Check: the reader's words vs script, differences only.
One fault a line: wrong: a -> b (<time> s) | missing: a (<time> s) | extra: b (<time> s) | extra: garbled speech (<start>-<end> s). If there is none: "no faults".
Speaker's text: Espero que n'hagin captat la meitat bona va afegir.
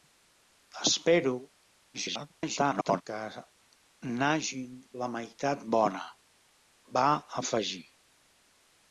extra: garbled speech (1.9-3.0 s)
missing: captat (4.7 s)